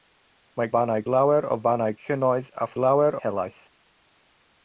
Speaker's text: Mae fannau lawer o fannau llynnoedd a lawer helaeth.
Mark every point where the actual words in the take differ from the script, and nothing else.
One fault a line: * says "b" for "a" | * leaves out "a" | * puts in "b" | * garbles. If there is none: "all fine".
all fine